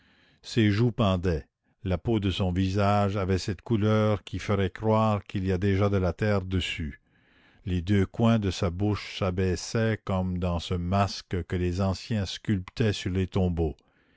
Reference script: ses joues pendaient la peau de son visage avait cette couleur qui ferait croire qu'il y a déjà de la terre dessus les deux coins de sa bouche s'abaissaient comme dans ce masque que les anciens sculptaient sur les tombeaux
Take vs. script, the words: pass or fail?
pass